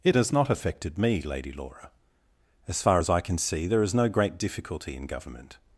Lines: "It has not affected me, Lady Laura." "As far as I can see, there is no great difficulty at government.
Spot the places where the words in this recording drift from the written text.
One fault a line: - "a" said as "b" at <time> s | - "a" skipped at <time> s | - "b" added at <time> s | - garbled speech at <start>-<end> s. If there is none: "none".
- "at" said as "in" at 4.9 s